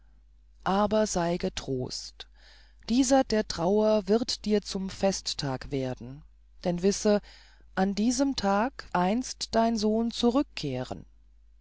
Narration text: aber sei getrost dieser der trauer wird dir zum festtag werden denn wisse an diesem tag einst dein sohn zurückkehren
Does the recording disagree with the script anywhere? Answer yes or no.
no